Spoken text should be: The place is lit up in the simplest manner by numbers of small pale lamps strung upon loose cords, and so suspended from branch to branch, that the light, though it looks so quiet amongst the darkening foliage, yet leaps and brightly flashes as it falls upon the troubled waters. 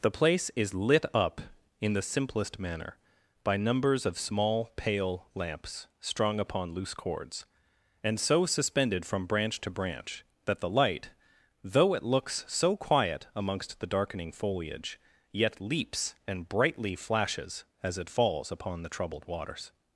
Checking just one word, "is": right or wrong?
right